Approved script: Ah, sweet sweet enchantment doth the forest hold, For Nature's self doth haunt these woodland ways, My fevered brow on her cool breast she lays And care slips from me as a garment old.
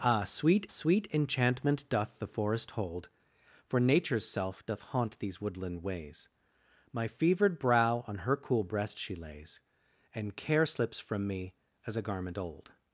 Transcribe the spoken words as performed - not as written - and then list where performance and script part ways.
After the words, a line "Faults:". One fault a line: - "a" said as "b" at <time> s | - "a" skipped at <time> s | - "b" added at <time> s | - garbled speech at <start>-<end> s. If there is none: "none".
Ah, sweet sweet enchantment doth the forest hold, For Nature's self doth haunt these woodland ways, My fevered brow on her cool breast she lays And care slips from me as a garment old.
Faults:
none